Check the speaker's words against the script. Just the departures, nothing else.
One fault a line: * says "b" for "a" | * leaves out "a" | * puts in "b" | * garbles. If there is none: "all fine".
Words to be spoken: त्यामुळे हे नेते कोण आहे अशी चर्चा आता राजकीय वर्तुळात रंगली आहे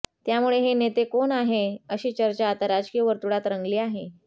all fine